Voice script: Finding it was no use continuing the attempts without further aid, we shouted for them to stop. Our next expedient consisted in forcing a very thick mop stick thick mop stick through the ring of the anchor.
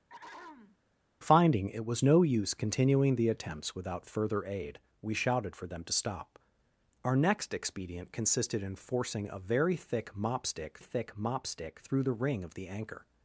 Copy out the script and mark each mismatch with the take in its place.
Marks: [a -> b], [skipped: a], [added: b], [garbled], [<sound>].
[throat clearing] Finding it was no use continuing the attempts without further aid, we shouted for them to stop. Our next expedient consisted in forcing a very thick mop stick thick mop stick through the ring of the anchor.